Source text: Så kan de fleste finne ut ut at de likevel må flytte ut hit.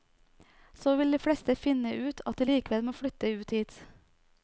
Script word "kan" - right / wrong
wrong